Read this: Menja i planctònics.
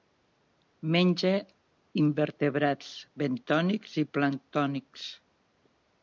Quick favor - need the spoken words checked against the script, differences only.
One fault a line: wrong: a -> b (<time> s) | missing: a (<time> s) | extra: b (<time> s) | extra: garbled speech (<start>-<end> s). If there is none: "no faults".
extra: invertebrats bentònics (2.0 s)